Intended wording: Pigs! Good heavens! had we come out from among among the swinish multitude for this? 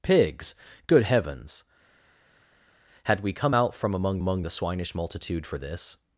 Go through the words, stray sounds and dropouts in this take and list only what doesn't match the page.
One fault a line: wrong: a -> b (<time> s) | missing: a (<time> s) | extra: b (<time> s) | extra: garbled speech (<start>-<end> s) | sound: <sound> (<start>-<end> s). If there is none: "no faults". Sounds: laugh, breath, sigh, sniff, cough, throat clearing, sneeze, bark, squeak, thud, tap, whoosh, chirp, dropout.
no faults